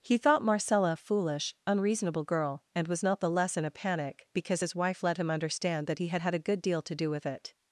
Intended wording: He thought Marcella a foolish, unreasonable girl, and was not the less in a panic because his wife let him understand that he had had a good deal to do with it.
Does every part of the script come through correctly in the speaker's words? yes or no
yes